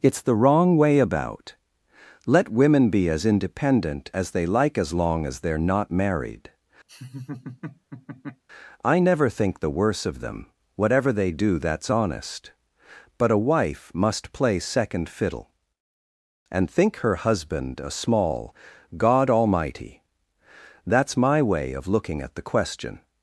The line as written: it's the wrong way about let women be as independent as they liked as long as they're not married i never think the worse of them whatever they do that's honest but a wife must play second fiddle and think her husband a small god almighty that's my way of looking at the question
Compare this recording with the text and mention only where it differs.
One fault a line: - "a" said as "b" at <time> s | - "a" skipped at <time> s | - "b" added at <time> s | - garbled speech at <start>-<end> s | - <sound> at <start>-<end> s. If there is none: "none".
- "liked" said as "like" at 4.5 s
- laugh at 6.9-8.4 s